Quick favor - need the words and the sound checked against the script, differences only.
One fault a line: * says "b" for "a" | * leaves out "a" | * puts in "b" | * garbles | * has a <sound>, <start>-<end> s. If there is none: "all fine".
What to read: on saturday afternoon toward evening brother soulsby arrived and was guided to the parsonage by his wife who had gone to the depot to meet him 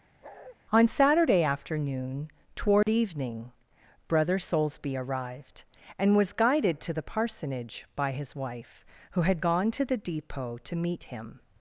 * has a bark, 0.2-0.6 s
* has a dropout, 2.8-2.9 s